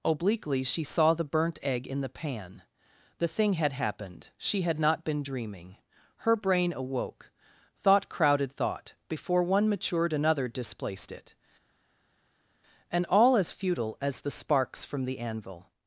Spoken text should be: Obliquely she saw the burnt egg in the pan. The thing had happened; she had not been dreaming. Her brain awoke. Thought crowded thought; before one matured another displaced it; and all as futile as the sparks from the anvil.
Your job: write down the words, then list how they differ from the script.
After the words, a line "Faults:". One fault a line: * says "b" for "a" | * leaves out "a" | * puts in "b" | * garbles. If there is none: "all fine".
Obliquely she saw the burnt egg in the pan. The thing had happened; she had not been dreaming. Her brain awoke. Thought crowded thought; before one matured another displaced it; and all as futile as the sparks from the anvil.
Faults:
all fine